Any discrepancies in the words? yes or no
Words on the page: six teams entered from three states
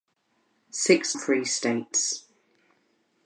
yes